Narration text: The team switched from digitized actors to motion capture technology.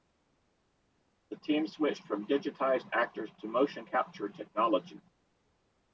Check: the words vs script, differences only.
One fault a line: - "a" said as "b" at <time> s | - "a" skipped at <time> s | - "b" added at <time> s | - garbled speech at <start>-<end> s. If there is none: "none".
none